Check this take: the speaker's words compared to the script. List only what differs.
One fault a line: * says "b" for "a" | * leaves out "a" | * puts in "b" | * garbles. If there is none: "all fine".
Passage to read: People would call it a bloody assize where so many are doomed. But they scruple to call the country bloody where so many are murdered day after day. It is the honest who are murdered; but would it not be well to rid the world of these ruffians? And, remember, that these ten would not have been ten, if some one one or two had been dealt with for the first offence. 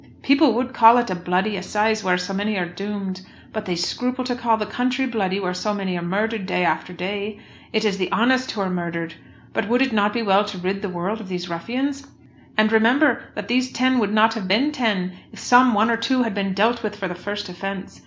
* leaves out "one"